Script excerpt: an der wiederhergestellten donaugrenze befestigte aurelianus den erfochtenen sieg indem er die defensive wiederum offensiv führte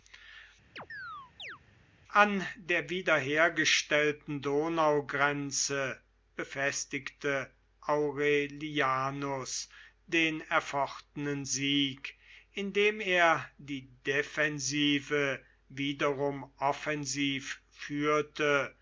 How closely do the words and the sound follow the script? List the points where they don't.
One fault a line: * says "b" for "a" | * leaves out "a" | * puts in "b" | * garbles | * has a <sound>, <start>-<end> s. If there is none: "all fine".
* has a chirp, 0.8-1.6 s